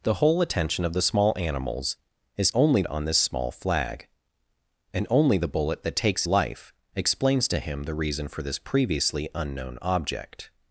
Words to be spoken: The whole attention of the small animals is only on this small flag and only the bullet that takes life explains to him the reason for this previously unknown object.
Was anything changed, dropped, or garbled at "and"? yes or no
no